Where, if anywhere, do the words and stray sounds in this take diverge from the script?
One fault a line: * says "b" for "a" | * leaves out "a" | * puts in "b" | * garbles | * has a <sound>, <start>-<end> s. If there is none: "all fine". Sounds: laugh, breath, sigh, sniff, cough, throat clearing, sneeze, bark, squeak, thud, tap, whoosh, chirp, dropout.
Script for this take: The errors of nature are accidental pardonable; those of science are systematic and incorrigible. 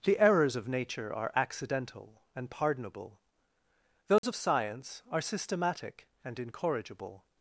* puts in "and"
* has a dropout, 4.2-4.2 s